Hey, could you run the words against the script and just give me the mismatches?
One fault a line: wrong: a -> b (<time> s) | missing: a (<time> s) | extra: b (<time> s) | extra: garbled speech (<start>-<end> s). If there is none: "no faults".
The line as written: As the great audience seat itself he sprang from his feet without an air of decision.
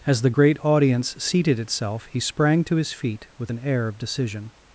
wrong: seat -> seated (1.2 s)
wrong: from -> to (2.6 s)
wrong: without -> with (3.4 s)